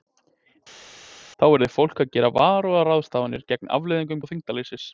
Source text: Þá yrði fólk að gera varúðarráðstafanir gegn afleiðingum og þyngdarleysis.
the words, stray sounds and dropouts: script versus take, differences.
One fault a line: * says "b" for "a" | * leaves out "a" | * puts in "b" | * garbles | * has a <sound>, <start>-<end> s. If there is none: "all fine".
all fine